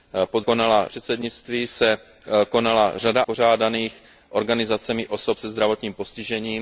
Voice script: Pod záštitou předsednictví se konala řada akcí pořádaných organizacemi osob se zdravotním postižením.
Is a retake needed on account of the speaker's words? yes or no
yes